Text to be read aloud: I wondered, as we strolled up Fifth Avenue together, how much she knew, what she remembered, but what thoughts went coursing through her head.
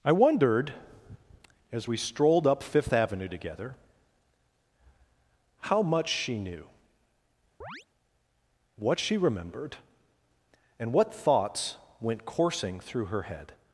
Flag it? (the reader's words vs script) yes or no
yes